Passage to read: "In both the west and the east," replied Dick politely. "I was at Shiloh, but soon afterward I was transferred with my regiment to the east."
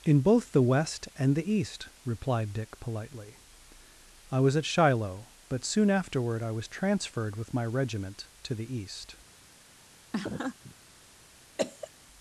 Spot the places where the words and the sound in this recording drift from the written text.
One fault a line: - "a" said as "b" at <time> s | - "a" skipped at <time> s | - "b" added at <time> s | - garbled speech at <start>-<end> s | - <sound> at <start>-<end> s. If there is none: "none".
- laugh at 10.1-10.7 s
- cough at 11.6-11.9 s